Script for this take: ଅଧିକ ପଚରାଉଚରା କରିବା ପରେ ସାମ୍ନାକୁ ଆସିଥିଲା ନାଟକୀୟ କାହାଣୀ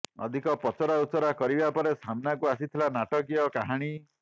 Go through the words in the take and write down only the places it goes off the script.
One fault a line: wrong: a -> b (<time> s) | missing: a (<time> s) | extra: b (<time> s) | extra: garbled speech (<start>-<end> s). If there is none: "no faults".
no faults